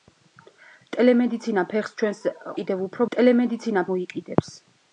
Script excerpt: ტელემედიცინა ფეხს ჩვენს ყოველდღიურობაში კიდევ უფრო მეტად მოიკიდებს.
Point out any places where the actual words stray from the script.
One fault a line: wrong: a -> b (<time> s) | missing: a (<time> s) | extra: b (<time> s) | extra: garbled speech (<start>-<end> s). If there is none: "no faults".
missing: ყოველდღიურობაში (2.2 s)
wrong: მეტად -> ტელემედიცინა (3.1 s)